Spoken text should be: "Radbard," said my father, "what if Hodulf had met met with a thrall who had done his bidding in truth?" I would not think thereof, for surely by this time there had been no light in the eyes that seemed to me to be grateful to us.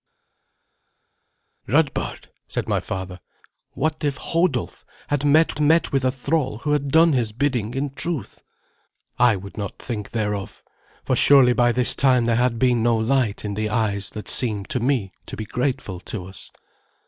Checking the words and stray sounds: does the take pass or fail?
pass